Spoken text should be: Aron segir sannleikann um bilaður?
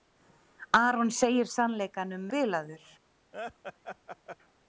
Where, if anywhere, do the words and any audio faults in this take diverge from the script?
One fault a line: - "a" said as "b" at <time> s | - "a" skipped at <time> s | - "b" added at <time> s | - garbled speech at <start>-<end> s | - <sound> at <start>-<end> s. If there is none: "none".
- laugh at 3.3-4.4 s